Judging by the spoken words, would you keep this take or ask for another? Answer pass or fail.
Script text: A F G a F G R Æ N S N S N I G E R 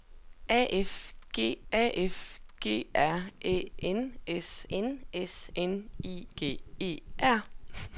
pass